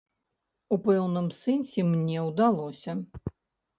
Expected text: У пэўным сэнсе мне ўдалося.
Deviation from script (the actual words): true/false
false